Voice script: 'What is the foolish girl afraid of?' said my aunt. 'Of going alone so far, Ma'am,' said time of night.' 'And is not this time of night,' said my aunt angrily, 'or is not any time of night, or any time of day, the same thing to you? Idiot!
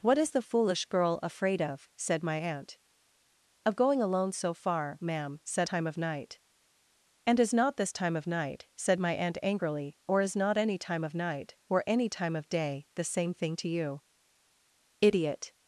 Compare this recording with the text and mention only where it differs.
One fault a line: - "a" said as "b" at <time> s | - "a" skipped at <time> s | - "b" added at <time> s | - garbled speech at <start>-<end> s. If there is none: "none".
none